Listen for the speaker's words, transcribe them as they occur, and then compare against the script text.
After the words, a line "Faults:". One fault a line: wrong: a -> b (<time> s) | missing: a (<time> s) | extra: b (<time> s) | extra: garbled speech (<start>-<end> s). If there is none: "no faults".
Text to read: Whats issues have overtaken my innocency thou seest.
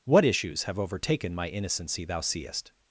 What issues have overtaken my innocency thou seest.
Faults:
wrong: Whats -> What (0.0 s)